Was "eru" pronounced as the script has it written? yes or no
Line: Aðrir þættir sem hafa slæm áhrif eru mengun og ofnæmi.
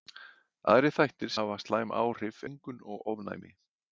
no